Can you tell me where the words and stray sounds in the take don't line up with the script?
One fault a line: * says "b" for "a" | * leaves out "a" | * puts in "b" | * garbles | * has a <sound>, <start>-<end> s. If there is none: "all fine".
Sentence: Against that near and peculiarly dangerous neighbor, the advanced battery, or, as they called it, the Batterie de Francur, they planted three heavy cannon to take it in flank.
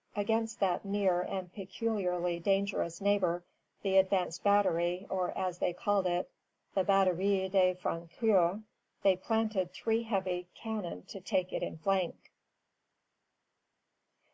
all fine